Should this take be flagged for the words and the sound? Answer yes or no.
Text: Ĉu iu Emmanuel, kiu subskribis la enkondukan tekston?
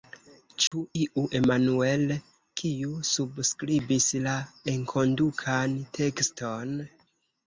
yes